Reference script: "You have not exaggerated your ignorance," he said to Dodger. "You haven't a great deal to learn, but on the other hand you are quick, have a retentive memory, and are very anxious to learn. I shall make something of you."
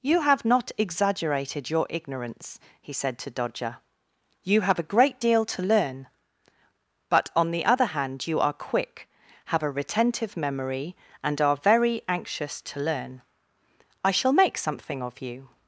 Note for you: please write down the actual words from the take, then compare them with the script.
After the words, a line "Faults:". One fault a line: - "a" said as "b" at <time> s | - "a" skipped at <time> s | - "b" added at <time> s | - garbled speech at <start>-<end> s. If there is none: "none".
"You have not exaggerated your ignorance," he said to Dodger. "You have a great deal to learn, but on the other hand you are quick, have a retentive memory, and are very anxious to learn. I shall make something of you."
Faults:
- "haven't" said as "have" at 4.6 s